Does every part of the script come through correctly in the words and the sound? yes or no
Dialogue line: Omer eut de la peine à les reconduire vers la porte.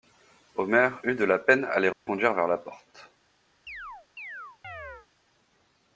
no